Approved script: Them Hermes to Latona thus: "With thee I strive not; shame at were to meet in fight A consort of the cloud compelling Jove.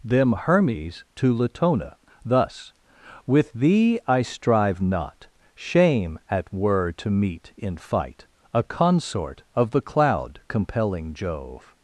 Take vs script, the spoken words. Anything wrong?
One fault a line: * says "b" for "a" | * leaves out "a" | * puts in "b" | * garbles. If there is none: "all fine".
all fine